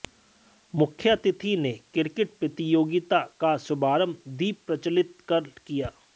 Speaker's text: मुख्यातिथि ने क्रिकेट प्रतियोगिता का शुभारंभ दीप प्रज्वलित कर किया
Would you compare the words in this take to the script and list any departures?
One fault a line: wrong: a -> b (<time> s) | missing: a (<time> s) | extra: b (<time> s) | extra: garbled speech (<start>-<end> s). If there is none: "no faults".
no faults